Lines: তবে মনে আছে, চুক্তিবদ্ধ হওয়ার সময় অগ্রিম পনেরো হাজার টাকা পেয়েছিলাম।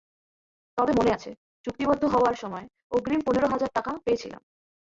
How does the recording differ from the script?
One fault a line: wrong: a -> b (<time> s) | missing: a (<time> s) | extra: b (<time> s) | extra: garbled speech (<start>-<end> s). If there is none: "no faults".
no faults